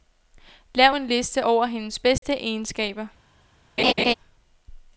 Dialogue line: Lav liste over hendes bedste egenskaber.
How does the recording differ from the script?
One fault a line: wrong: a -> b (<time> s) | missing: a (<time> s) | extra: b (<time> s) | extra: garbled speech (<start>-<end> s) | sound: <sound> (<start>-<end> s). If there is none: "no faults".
extra: en (0.9 s)
sound: dropout (2.2-2.2 s)
sound: laugh (3.8-4.1 s)